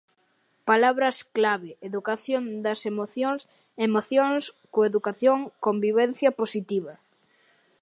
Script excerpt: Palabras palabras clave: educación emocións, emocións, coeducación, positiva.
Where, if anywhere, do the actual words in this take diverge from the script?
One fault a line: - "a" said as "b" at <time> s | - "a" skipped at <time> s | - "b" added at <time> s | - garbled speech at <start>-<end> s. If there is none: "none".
- "palabras" skipped at 1.2 s
- "das" added at 2.6 s
- "convivencia" added at 5.7 s